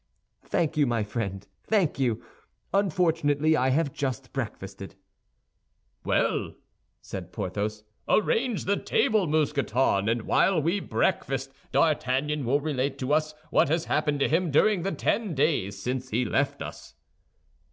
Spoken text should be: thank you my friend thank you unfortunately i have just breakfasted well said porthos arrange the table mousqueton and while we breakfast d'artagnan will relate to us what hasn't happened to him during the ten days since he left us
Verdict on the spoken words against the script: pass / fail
fail